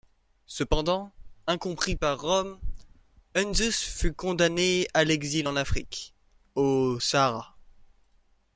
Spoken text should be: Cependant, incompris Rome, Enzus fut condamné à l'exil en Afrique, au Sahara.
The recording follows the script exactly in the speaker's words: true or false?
false